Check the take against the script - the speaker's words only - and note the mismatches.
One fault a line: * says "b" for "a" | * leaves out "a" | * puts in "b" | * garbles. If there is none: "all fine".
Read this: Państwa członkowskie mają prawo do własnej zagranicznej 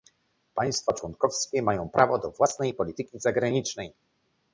* puts in "polityki"